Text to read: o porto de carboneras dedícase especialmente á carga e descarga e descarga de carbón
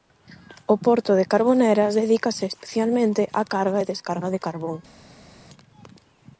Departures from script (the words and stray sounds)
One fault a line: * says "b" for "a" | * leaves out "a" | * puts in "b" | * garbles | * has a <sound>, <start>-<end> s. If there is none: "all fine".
* leaves out "e descarga"